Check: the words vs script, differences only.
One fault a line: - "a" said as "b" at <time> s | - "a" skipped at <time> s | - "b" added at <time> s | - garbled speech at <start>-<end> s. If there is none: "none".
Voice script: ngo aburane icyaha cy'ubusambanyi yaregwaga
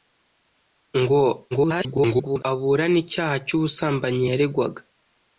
- garbled speech at 1.5-2.4 s